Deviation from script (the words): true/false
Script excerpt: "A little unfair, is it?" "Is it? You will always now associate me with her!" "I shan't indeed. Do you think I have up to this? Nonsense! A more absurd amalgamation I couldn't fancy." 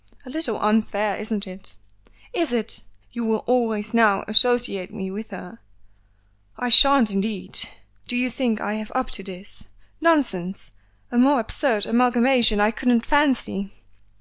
true